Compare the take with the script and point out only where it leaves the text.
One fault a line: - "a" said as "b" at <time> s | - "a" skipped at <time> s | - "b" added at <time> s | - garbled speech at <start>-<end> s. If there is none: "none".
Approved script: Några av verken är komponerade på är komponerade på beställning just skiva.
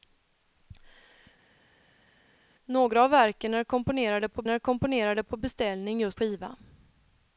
none